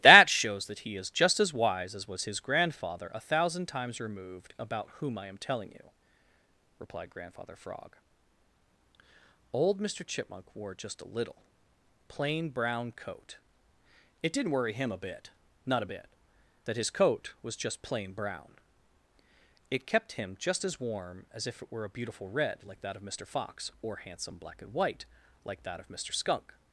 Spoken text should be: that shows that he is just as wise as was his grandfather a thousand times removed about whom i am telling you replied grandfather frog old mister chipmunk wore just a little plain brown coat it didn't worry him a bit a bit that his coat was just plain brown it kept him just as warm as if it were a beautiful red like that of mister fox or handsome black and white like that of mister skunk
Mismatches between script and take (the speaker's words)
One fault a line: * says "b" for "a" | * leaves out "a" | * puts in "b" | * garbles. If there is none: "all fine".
* puts in "not"